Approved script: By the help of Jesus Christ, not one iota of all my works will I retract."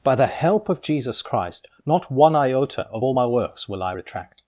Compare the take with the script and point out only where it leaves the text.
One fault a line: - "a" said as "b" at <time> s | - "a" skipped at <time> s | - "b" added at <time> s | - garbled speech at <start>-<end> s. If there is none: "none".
none